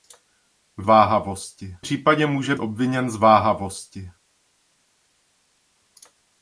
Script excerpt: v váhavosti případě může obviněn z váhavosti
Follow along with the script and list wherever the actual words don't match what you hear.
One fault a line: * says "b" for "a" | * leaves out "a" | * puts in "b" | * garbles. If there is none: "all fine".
all fine